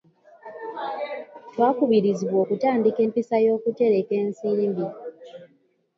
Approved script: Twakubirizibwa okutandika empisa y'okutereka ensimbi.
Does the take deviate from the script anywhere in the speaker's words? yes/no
no